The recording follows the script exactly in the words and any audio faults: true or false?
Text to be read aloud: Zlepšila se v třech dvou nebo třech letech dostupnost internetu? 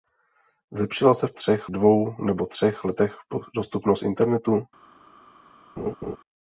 false